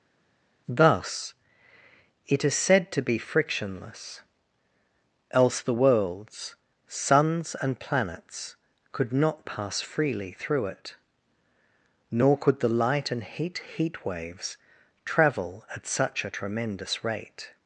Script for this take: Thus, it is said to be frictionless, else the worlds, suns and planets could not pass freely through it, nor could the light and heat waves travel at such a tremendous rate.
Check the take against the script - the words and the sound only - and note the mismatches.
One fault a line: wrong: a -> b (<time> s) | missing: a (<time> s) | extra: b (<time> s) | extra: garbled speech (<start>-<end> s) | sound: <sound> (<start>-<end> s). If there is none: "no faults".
extra: heat (13.8 s)